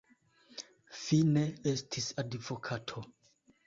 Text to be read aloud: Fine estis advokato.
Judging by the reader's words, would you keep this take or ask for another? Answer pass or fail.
pass